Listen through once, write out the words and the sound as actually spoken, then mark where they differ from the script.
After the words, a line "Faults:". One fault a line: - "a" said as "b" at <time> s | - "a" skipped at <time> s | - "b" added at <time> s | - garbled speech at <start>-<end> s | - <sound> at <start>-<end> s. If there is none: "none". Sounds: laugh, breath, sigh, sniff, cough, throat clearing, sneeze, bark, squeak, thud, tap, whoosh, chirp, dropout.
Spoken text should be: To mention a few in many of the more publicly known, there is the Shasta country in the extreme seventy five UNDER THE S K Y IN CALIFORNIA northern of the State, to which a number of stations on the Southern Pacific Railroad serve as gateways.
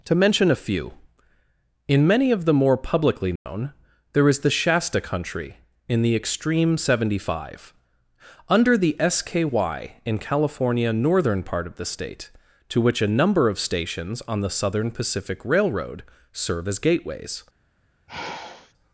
To mention a few in many of the more publicly known, there is the Shasta country in the extreme seventy five UNDER THE S K Y IN CALIFORNIA northern part of the State, to which a number of stations on the Southern Pacific Railroad serve as gateways.
Faults:
- dropout at 3.4-3.5 s
- "part" added at 11.4 s
- sigh at 18.1-18.7 s